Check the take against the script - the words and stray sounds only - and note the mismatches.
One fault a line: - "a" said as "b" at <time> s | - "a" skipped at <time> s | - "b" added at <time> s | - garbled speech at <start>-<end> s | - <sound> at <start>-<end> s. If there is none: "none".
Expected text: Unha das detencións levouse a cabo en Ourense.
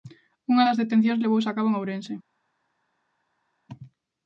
none